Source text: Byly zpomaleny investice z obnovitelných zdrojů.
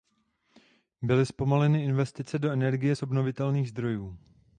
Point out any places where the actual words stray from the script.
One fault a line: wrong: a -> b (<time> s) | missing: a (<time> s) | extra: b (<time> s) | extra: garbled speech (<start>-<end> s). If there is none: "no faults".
extra: do energie (2.4 s)